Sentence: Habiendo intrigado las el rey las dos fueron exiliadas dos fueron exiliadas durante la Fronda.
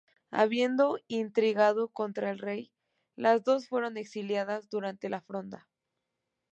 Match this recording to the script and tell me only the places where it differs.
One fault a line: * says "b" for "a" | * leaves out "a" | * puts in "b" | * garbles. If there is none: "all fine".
* says "contra" for "las"
* leaves out "dos fueron exiliadas"